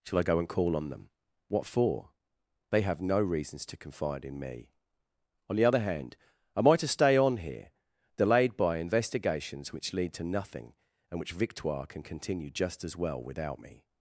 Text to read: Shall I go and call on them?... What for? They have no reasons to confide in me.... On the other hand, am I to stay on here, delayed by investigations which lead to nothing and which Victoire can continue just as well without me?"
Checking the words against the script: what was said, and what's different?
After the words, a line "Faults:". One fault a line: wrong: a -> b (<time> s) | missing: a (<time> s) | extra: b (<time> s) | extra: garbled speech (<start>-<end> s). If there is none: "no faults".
Shall I go and call on them?... What for? They have no reasons to confide in me.... On the other hand, am I to stay on here, delayed by investigations which lead to nothing and which Victoire can continue just as well without me?"
Faults:
no faults